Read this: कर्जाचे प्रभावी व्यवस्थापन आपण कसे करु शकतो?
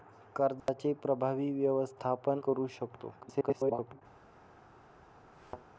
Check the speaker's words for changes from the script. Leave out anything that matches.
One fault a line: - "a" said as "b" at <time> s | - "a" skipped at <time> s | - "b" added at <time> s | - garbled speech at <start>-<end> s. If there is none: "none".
- "आपण कसे" skipped at 2.4 s
- garbled speech at 3.2-4.0 s